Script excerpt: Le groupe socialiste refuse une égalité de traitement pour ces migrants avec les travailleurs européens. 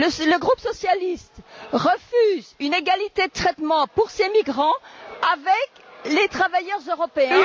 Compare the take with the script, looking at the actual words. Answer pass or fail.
pass